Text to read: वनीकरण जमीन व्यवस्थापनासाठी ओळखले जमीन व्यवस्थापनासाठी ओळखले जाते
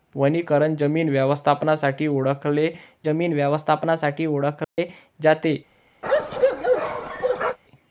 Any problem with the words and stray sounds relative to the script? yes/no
yes